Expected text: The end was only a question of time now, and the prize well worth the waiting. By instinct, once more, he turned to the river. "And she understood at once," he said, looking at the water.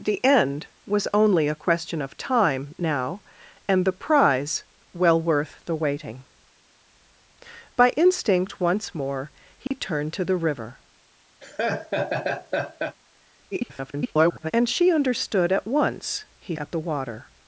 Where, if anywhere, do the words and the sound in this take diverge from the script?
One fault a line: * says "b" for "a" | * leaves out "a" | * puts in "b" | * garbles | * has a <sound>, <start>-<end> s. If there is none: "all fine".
* has a dropout, 9.7-9.7 s
* has a laugh, 11.4-13.0 s
* garbles
* leaves out "said looking"